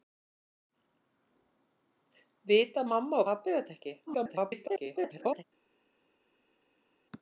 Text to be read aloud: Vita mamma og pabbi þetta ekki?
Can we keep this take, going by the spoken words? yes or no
no